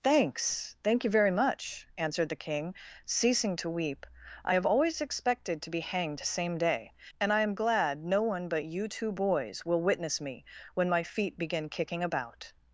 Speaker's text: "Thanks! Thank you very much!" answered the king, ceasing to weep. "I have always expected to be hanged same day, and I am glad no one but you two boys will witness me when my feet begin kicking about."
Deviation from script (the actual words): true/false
false